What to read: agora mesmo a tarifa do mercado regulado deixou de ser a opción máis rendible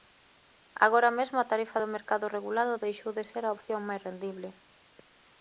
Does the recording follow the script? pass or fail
pass